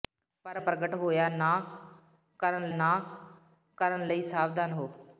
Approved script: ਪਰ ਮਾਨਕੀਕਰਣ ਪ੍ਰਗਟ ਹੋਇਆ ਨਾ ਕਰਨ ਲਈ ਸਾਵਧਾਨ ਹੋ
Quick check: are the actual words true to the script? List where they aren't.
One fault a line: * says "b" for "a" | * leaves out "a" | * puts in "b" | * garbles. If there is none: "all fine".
* leaves out "ਮਾਨਕੀਕਰਣ"
* puts in "ਨਾ ਕਰਨ"